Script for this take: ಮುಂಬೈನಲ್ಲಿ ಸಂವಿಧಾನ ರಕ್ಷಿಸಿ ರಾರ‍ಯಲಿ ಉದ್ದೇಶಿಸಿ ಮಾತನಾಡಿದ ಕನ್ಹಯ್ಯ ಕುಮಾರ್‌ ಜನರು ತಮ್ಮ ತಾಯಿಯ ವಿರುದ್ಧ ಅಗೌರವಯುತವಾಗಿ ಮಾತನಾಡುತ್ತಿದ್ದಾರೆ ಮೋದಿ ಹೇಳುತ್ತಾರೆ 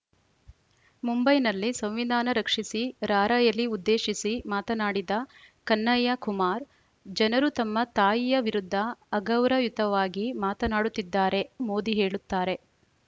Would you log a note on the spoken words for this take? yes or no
no